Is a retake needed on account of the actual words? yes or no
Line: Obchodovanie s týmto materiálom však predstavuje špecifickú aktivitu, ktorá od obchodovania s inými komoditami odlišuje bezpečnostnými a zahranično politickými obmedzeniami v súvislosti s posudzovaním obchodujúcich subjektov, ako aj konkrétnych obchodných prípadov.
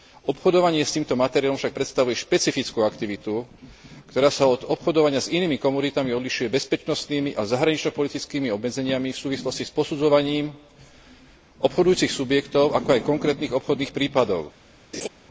yes